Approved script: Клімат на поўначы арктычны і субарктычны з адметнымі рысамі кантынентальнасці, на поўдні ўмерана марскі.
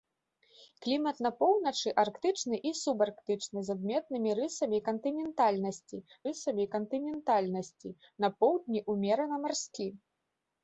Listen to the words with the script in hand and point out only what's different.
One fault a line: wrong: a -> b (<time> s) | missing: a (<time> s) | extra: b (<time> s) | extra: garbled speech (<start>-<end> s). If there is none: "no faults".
extra: рысамі кантынентальнасці (6.3 s)